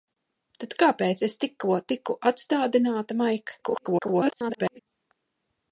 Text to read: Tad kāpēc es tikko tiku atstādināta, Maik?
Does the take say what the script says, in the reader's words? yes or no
no